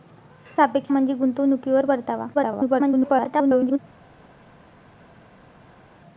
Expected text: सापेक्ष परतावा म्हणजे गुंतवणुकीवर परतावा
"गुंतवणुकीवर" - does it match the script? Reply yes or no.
yes